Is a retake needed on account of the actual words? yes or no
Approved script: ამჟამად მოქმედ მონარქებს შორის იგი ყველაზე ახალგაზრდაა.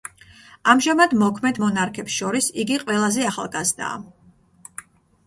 no